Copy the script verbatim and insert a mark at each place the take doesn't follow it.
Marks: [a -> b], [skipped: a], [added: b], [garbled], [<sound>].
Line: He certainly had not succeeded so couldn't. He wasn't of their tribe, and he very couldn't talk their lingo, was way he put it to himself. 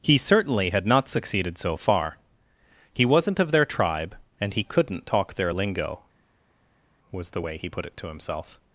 He certainly had not succeeded so [couldn't. -> far] He wasn't of their tribe, and he [skipped: very] couldn't talk their lingo, was [added: the] way he put it to himself.